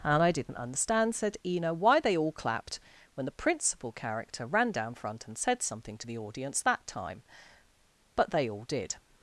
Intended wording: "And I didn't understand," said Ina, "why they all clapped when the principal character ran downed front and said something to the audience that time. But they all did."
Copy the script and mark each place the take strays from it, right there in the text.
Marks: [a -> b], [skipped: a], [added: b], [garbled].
"And I didn't understand," said Ina, "why they all clapped when the principal character ran [downed -> down] front and said something to the audience that time. But they all did."